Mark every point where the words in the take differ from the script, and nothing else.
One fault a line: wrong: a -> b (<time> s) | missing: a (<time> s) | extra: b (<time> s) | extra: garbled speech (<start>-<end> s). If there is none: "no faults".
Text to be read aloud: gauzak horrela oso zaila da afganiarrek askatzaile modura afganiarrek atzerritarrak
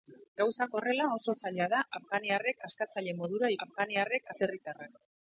no faults